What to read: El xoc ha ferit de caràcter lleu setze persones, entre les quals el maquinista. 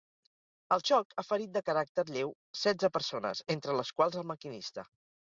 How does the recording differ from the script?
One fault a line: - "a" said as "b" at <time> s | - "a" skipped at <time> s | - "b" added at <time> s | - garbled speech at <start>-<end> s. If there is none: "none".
none